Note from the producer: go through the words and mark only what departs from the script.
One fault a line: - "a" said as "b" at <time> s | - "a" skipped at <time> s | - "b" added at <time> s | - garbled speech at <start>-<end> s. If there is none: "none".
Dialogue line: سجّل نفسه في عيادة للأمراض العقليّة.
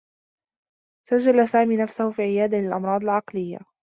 - "سامي" added at 1.5 s